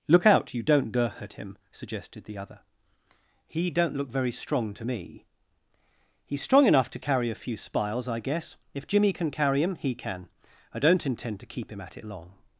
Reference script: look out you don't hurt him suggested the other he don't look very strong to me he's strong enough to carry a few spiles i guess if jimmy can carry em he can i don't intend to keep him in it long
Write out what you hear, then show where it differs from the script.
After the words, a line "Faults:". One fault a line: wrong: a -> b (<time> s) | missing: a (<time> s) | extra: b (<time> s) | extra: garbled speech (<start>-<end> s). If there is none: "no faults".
look out you don't hurt him suggested the other he don't look very strong to me he's strong enough to carry a few spiles i guess if jimmy can carry em he can i don't intend to keep him at it long
Faults:
wrong: in -> at (11.8 s)